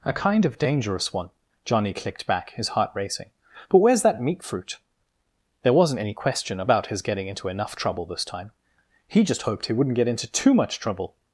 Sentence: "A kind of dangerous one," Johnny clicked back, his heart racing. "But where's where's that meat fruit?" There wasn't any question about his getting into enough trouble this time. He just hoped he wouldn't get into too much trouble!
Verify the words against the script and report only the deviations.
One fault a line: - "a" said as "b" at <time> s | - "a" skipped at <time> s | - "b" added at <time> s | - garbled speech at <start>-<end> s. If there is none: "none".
- "where's" skipped at 4.0 s